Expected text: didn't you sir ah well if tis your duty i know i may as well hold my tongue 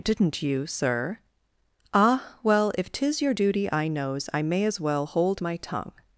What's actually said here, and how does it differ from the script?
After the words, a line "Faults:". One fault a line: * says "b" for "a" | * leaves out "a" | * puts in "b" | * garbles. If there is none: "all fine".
didn't you sir ah well if tis your duty i knows i may as well hold my tongue
Faults:
* says "knows" for "know"